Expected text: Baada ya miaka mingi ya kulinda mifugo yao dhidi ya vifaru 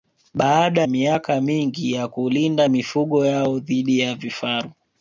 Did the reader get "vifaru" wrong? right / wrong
right